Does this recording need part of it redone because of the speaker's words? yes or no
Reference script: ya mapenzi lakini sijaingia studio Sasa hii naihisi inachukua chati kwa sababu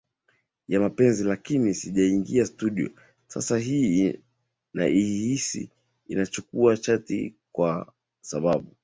no